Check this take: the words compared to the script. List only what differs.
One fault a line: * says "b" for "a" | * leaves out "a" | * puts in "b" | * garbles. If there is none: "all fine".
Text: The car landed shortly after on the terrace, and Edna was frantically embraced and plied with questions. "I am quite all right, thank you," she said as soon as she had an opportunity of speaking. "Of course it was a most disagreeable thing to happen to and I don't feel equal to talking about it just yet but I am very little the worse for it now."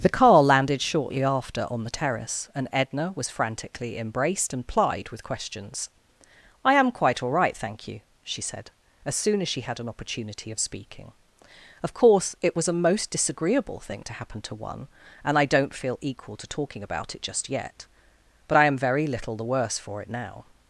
* puts in "one"